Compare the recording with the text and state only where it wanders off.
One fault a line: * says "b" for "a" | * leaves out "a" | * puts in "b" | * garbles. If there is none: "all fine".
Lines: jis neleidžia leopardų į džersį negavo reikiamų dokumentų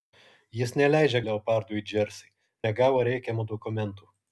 all fine